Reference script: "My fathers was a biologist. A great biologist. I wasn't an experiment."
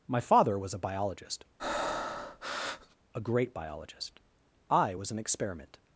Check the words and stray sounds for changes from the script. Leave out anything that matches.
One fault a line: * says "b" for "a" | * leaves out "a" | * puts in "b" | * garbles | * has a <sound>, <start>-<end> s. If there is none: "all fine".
* says "father" for "fathers"
* has a breath, 1.6-3.0 s
* says "was" for "wasn't"